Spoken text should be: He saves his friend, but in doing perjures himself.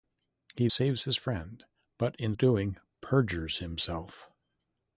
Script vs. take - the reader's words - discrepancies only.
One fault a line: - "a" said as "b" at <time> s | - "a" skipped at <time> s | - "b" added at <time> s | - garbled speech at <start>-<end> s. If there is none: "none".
none